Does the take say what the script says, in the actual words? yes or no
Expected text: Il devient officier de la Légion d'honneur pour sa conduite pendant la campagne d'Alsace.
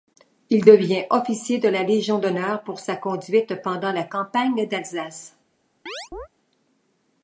yes